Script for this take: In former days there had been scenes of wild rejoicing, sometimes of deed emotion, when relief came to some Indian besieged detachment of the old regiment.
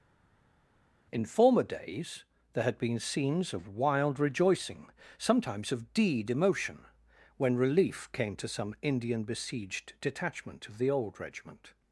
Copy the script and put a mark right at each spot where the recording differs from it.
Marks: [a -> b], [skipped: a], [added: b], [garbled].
In former days there had been scenes of wild rejoicing, sometimes of deed emotion, when relief came to some Indian besieged detachment of the old regiment.